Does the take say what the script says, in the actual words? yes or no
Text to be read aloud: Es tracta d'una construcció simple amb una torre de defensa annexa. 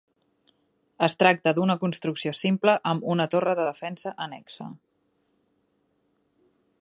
yes